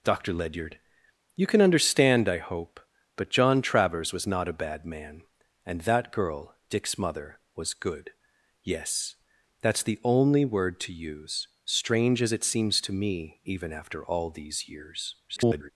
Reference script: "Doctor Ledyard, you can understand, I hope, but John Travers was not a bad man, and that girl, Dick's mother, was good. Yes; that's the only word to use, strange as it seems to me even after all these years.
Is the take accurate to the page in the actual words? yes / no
no